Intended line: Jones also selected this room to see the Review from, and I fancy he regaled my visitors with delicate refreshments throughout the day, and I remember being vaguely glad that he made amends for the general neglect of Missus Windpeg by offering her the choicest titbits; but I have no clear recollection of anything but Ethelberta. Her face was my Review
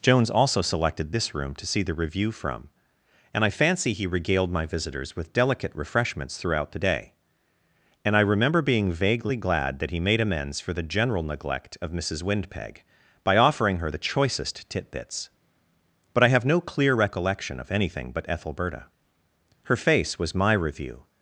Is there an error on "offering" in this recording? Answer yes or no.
no